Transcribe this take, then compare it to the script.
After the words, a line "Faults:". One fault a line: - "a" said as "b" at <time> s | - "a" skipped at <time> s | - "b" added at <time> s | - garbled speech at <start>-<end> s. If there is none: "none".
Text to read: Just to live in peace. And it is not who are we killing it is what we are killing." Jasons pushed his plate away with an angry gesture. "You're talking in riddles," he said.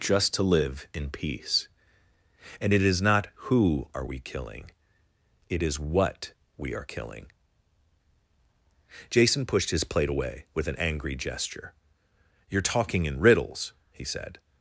Just to live in peace. And it is not who are we killing it is what we are killing." Jason pushed his plate away with an angry gesture. "You're talking in riddles," he said.
Faults:
- "Jasons" said as "Jason" at 9.1 s